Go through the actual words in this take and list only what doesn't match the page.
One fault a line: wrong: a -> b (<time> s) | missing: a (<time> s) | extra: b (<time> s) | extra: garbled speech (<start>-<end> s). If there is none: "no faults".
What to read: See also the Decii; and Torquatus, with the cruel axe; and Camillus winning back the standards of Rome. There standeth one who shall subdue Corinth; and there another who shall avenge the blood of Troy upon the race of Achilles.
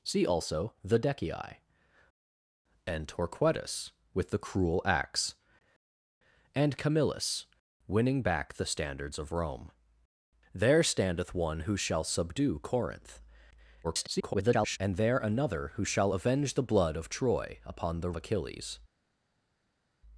extra: garbled speech (13.8-14.8 s)
missing: race of (18.1 s)